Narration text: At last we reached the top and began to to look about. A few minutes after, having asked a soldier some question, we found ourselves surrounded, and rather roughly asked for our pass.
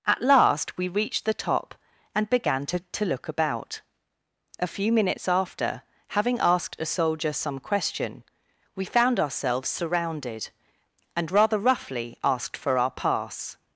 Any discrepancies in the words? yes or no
no